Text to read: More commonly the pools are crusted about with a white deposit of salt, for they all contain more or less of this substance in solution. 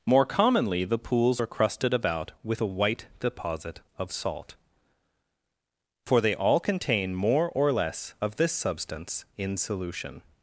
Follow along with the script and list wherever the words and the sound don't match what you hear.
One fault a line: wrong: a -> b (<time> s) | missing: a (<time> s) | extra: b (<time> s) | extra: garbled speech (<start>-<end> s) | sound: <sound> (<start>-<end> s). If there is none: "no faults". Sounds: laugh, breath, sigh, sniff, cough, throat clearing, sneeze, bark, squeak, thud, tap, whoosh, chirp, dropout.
no faults